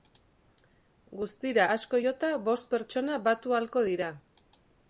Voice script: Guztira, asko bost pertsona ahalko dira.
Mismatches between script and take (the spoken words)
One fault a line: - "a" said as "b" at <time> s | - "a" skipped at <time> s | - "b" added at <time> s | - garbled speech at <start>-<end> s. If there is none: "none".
- "jota" added at 2.1 s
- "batu" added at 3.3 s